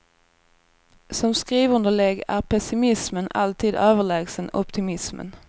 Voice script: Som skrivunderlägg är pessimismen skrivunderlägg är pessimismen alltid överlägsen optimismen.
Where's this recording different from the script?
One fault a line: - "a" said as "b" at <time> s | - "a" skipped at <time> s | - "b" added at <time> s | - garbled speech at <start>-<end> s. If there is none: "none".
- "skrivunderlägg är pessimismen" skipped at 3.3 s